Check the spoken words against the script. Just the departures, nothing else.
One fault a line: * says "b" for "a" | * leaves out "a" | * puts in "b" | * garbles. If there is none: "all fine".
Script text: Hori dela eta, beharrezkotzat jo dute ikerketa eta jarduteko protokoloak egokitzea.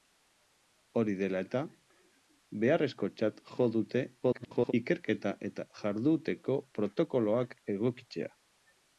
* garbles